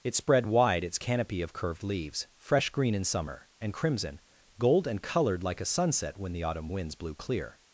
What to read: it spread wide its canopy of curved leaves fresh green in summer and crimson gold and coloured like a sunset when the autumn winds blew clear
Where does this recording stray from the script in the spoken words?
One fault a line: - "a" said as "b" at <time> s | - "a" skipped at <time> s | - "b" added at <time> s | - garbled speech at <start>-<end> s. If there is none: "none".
none